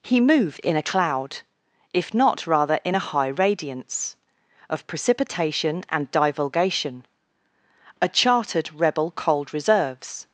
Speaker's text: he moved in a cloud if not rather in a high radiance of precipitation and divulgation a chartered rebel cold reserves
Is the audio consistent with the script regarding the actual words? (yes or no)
yes